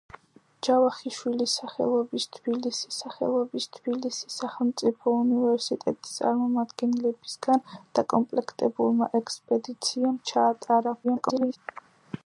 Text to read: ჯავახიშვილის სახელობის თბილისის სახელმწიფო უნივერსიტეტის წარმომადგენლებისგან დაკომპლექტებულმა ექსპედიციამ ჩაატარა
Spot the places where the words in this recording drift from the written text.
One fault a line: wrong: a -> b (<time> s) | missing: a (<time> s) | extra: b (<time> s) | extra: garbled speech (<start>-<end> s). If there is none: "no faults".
extra: სახელობის თბილისის (3.0 s)
extra: garbled speech (11.0-11.6 s)